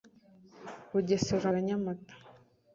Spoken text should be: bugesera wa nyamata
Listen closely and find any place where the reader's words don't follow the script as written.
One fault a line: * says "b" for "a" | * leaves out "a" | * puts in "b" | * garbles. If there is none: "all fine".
all fine